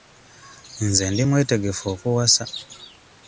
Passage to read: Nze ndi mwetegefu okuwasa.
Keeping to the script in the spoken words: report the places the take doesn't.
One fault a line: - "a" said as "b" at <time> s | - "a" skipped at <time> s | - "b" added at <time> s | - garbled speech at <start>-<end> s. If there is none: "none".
none